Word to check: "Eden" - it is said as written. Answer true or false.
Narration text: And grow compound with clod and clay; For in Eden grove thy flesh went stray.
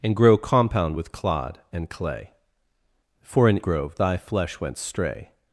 false